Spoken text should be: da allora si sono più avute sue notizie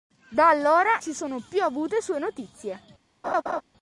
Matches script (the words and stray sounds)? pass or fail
fail